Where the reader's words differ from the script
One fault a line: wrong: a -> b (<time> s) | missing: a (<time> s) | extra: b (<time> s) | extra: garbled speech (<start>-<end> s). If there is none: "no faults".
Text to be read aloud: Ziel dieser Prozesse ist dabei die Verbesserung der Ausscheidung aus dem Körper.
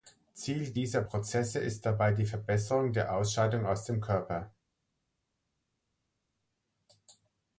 no faults